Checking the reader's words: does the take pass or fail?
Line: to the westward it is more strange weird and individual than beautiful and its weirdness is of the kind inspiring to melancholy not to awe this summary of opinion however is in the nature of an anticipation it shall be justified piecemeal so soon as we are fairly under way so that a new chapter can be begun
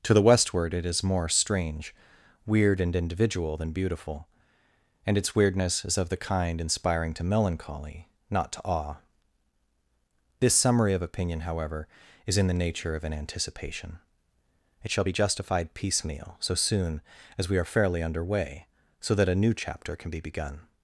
pass